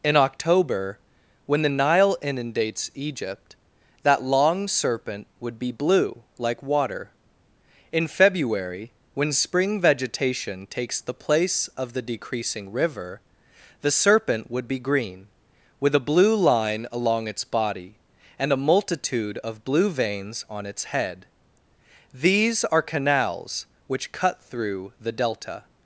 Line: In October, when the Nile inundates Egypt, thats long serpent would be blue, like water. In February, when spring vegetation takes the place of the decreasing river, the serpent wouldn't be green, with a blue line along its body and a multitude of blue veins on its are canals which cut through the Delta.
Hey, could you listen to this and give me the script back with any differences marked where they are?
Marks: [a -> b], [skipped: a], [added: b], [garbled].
In October, when the Nile inundates Egypt, [thats -> that] long serpent would be blue, like water. In February, when spring vegetation takes the place of the decreasing river, the serpent [wouldn't -> would] be green, with a blue line along its body and a multitude of blue veins on its [added: head these] are canals which cut through the Delta.